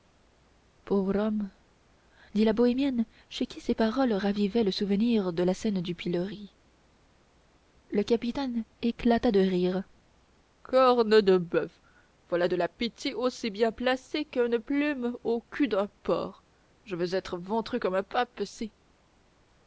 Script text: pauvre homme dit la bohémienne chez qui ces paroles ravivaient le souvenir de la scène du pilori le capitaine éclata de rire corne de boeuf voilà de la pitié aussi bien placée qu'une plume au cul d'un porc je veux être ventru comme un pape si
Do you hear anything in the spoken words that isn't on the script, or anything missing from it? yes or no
no